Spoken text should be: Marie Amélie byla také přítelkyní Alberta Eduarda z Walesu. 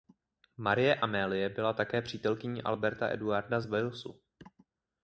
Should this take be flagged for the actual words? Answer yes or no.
no